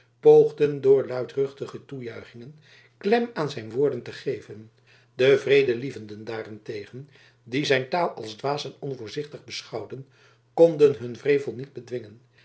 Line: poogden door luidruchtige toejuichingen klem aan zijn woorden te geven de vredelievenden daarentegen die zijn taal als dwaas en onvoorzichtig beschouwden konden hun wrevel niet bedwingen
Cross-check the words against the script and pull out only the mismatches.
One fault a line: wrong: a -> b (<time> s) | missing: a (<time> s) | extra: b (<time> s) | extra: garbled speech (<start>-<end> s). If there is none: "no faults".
no faults